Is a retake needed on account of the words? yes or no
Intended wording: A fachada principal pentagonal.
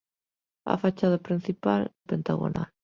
no